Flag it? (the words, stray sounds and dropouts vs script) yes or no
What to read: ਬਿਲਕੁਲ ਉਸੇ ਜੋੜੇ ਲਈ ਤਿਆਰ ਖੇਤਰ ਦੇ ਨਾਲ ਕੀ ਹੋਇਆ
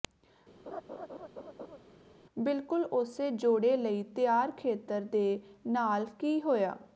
yes